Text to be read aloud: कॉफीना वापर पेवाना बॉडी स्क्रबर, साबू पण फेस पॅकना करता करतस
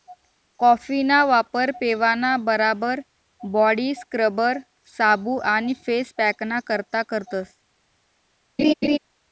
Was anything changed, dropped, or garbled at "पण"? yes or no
yes